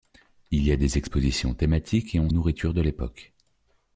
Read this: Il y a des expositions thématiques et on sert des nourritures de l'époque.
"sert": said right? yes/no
no